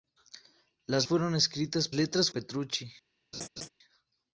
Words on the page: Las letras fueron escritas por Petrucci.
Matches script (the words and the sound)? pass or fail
fail